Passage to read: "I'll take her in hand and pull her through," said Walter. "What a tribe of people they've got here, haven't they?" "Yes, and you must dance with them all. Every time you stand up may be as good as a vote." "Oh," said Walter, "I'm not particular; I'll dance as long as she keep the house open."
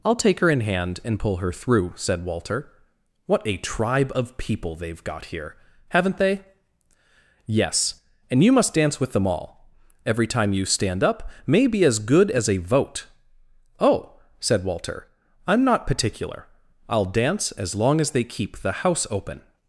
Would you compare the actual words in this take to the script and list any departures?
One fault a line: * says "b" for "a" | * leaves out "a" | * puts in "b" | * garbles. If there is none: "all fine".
* says "they" for "she"